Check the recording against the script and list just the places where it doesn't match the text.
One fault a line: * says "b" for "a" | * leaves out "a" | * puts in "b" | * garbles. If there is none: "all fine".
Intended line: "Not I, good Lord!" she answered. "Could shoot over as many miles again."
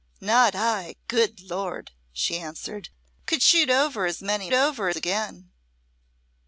* says "over" for "miles"